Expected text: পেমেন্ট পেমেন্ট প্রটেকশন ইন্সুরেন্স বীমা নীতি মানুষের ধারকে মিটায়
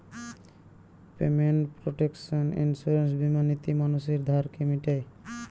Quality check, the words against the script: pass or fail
fail